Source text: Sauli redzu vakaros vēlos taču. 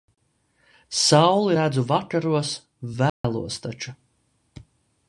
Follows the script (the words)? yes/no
yes